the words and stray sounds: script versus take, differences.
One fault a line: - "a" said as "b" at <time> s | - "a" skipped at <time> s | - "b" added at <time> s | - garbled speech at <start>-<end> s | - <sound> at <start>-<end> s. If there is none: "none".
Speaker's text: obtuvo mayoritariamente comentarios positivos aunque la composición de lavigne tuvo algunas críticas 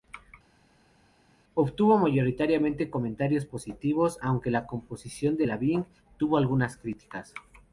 none